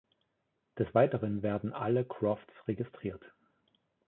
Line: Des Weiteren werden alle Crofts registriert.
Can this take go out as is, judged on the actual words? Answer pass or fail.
pass